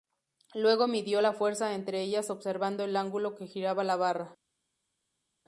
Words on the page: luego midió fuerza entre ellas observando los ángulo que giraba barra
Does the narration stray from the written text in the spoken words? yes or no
yes